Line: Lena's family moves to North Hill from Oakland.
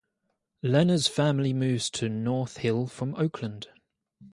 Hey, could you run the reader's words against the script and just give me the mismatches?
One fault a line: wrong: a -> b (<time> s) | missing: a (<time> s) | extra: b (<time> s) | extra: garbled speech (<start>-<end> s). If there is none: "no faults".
no faults